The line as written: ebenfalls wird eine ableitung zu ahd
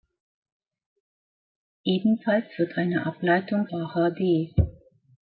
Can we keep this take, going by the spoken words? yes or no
no